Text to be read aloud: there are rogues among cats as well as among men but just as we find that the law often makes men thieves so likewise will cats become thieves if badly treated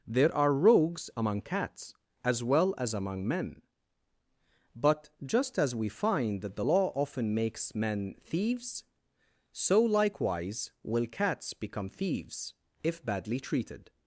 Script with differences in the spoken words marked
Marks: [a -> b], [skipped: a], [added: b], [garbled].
there are rogues among cats as well as among men but just as we find that the law often makes men thieves so likewise will cats become thieves if badly treated